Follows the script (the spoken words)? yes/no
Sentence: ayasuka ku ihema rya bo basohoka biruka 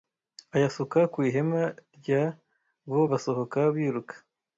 yes